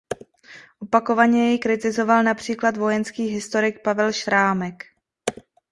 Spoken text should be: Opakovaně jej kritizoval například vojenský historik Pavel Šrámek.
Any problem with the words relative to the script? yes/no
no